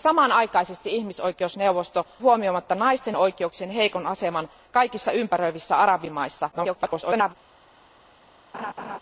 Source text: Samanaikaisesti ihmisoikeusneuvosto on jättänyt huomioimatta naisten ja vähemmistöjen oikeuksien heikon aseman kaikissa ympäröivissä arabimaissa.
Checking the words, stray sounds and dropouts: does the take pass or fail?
fail